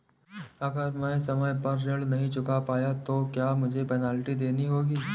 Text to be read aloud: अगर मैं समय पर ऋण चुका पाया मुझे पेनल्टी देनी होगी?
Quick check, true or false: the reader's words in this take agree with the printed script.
false